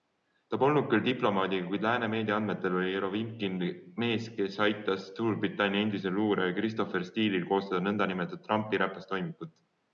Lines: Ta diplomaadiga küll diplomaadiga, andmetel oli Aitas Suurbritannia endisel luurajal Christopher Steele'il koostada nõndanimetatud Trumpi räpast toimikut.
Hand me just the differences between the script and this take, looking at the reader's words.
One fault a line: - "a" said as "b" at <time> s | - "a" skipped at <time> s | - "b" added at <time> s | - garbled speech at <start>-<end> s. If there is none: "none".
- "diplomaadiga" said as "polnud" at 0.6 s
- "kuid lääne meedia" added at 1.7 s
- "Jerovinkin mees kes" added at 3.0 s